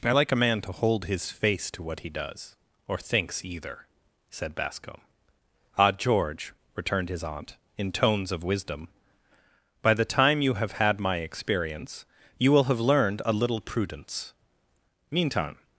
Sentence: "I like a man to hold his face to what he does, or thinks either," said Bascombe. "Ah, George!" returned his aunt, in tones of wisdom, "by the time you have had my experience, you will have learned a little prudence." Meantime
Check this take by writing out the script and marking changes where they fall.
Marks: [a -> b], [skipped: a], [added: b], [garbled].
"I like a man to hold his face to what he does, or thinks either," said Bascombe. "Ah, George!" returned his aunt, in tones of wisdom, "by the time you have had my experience, you will have learned a little prudence." Meantime